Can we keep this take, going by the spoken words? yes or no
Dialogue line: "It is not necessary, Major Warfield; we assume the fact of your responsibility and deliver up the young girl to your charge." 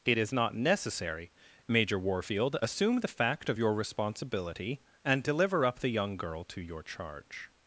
no